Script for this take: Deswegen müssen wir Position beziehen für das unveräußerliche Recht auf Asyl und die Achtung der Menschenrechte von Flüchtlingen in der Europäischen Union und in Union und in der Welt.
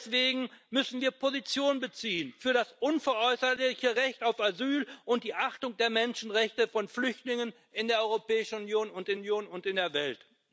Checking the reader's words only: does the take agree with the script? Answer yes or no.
yes